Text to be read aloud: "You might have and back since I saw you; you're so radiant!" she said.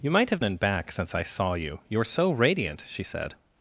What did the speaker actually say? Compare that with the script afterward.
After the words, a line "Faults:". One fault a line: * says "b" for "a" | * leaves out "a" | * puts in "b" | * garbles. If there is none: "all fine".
"You might have and back since I saw you; you're so radiant!" she said.
Faults:
all fine